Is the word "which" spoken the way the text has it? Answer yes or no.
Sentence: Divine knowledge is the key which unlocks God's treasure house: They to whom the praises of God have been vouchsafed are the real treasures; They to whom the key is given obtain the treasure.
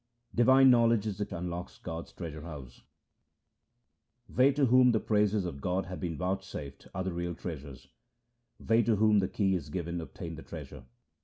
no